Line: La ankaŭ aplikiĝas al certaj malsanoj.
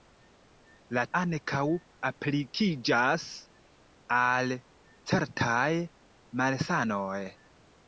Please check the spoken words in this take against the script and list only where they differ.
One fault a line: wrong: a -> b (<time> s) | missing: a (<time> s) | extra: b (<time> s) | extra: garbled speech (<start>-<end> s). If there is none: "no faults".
no faults